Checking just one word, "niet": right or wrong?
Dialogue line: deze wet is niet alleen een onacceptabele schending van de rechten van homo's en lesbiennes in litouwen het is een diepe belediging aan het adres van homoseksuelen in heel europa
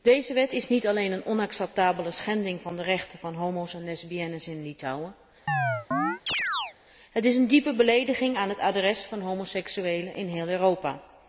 right